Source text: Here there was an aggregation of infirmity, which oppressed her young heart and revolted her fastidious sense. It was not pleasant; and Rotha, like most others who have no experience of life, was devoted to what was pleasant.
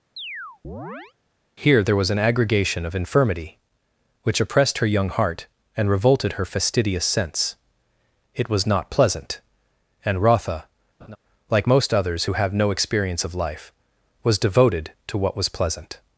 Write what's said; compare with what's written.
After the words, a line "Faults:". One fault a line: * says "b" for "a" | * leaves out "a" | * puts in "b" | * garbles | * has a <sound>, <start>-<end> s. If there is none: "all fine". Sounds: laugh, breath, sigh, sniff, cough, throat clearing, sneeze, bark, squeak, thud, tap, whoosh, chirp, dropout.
Here there was an aggregation of infirmity, which oppressed her young heart and revolted her fastidious sense. It was not pleasant; and Rotha, like most others who have no experience of life, was devoted to what was pleasant.
Faults:
* has a chirp, 0.2-1.1 s
* has a laugh, 11.0-11.2 s